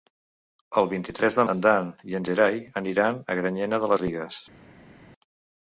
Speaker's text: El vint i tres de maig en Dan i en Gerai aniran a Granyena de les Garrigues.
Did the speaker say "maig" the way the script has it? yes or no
no